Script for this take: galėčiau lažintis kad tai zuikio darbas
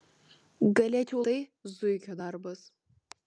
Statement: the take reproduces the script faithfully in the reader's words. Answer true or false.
false